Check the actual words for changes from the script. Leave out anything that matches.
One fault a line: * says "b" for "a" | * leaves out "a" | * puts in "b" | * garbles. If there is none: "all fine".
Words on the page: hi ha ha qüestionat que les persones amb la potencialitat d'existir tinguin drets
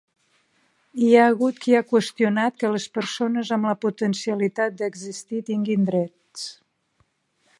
* puts in "hagut qui"